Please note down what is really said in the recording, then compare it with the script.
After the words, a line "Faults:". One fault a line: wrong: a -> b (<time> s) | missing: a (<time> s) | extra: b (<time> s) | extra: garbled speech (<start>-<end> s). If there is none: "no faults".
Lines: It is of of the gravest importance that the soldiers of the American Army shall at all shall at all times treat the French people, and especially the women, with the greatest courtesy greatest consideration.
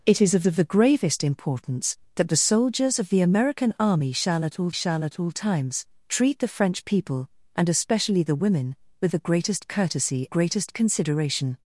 It is of of the gravest importance that the soldiers of the American Army shall at all shall at all times treat the French people, and especially the women, with the greatest courtesy greatest consideration.
Faults:
no faults